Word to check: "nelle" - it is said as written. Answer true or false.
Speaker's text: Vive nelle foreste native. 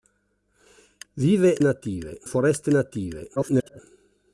false